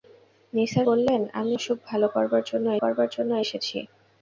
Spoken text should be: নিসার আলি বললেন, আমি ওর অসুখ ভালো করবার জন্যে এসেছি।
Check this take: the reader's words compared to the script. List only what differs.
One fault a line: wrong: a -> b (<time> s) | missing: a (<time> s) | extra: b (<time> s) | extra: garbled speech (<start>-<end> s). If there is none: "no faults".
missing: আলি (0.9 s)
missing: ওর (1.5 s)
extra: করবার জন্যে (2.8 s)